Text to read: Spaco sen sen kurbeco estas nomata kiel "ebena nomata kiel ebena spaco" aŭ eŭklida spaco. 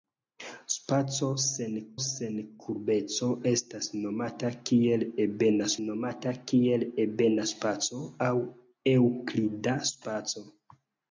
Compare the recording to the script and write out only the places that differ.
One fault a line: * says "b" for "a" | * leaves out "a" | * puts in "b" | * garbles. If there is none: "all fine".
all fine